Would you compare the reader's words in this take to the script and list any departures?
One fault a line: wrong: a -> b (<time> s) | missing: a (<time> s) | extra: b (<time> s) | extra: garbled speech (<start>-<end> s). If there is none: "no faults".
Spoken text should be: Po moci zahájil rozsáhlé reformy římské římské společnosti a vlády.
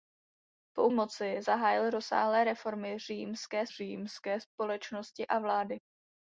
no faults